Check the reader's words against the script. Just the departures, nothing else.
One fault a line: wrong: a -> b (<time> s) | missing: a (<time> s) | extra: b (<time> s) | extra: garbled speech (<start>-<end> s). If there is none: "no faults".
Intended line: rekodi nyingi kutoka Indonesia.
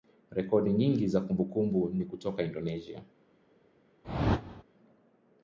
extra: za kumbukumbu ni (1.1 s)